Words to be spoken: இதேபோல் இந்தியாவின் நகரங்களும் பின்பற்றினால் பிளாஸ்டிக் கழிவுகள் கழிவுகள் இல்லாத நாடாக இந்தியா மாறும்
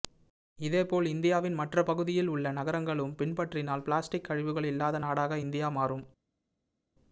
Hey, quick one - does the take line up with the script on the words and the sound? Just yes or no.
no